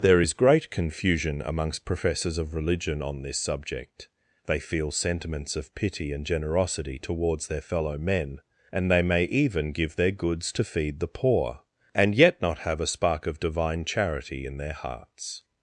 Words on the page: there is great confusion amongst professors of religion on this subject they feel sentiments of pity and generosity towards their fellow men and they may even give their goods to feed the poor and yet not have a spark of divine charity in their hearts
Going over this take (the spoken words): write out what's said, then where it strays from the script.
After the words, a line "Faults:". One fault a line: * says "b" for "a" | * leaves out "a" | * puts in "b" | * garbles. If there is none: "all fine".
there is great confusion amongst professors of religion on this subject they feel sentiments of pity and generosity towards their fellow men and they may even give their goods to feed the poor and yet not have a spark of divine charity in their hearts
Faults:
all fine